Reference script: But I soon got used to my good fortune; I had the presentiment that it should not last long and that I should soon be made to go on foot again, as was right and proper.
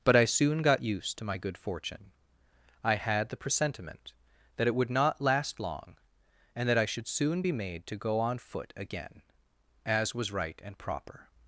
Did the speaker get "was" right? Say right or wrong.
right